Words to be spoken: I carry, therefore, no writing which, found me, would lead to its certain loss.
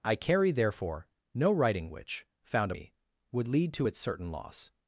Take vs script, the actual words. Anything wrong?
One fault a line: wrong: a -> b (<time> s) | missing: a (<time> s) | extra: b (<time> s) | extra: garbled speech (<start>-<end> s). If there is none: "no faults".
no faults